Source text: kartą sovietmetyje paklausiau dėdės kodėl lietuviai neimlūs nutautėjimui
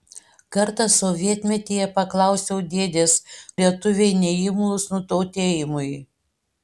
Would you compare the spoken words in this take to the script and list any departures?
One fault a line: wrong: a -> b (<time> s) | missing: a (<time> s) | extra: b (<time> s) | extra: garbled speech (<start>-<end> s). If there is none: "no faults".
missing: kodėl (3.1 s)